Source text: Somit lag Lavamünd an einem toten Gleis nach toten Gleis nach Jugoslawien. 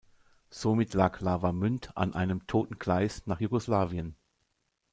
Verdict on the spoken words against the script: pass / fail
fail